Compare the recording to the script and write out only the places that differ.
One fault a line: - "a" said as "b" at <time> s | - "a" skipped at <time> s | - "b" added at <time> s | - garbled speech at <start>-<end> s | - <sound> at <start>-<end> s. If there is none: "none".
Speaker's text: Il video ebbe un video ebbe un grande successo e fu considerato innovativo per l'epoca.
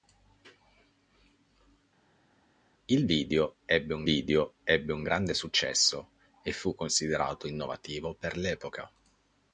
none